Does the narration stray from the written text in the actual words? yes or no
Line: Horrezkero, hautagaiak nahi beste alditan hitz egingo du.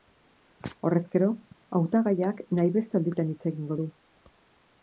no